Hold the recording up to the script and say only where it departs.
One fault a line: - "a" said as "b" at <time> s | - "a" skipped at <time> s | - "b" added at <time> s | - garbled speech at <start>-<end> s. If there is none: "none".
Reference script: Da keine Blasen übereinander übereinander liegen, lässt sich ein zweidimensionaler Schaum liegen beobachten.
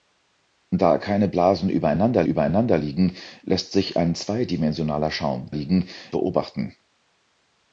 none